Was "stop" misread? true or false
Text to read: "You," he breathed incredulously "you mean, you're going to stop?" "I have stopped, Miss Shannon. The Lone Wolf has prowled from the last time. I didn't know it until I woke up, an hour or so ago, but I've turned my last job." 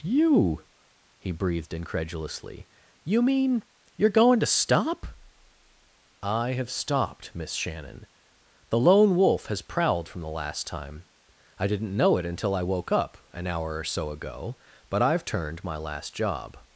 false